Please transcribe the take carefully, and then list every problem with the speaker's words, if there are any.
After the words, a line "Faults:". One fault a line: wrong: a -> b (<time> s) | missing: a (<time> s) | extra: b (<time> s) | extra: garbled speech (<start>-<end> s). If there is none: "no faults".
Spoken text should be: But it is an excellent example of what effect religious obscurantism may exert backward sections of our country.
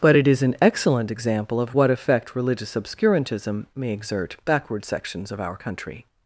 But it is an excellent example of what effect religious obscurantism may exert backward sections of our country.
Faults:
no faults